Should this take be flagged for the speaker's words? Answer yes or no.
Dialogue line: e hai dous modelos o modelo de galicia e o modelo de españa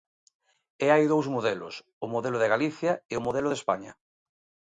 no